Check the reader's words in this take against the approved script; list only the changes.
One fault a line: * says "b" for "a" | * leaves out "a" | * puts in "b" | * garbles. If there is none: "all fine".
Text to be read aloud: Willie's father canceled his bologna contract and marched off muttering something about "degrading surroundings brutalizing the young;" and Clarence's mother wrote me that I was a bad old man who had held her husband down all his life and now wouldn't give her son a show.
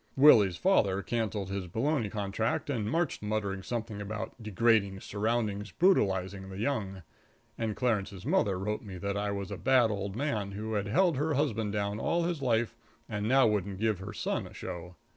* leaves out "off"